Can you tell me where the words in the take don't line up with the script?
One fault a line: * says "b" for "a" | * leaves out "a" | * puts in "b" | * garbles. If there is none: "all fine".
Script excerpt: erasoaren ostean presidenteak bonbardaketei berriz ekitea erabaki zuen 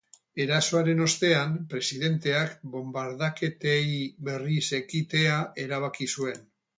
all fine